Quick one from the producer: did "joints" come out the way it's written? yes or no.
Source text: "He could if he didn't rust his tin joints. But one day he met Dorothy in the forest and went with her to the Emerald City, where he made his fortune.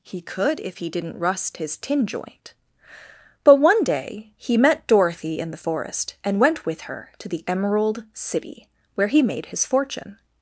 no